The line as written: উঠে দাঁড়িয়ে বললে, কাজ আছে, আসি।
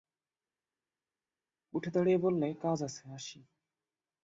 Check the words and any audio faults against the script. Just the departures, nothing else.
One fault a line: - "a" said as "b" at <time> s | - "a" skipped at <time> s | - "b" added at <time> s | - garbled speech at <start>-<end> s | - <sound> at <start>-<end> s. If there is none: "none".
none